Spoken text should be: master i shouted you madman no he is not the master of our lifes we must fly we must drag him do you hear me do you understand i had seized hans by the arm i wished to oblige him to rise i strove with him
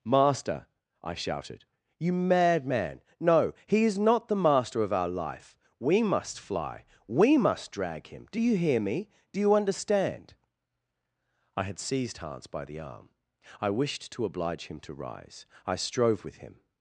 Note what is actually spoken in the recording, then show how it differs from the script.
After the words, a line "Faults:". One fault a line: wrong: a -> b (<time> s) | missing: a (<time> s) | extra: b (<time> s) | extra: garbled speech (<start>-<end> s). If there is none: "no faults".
master i shouted you madman no he is not the master of our life we must fly we must drag him do you hear me do you understand i had seized hans by the arm i wished to oblige him to rise i strove with him
Faults:
wrong: lifes -> life (5.1 s)